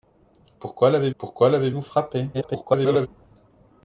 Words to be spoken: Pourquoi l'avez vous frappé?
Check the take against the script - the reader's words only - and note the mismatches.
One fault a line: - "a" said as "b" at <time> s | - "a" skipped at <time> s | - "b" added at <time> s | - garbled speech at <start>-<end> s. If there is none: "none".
- "pourquoi l'avez" added at 1.2 s
- garbled speech at 2.3-3.1 s